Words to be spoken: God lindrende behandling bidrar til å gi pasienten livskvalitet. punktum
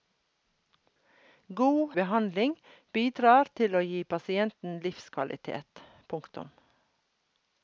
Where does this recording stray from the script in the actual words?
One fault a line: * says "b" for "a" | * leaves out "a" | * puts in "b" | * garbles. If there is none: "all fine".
* leaves out "lindrende"